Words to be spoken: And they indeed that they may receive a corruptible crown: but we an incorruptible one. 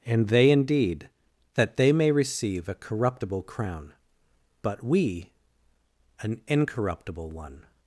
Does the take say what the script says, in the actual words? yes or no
yes